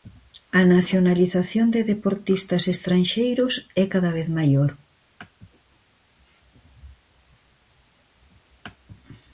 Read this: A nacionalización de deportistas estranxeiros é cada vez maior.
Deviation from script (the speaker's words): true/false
false